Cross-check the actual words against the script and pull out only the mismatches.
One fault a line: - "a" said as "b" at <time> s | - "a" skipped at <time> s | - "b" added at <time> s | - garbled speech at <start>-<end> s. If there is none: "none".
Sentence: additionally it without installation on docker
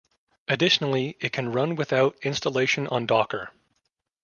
- "can run" added at 1.3 s